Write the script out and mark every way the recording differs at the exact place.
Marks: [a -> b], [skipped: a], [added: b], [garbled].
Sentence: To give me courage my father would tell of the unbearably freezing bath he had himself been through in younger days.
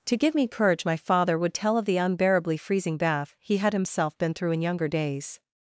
To give me courage my father would tell of the unbearably freezing bath he had himself been through in younger days.